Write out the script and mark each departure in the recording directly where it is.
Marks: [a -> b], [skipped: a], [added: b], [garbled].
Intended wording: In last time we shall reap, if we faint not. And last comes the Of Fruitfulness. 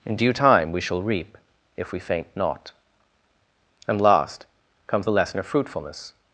In [last -> due] time we shall reap, if we faint not. And last comes the [added: Lesson] Of Fruitfulness.